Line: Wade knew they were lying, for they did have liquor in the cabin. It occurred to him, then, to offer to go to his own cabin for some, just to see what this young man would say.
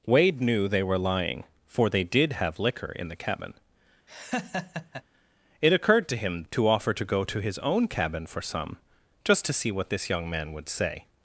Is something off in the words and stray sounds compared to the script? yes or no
yes